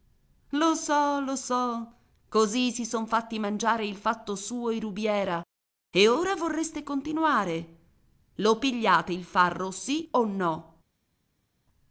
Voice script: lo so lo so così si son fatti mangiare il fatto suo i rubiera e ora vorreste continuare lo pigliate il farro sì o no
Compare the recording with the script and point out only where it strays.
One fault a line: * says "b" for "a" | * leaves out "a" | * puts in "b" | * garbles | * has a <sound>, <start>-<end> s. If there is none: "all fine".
all fine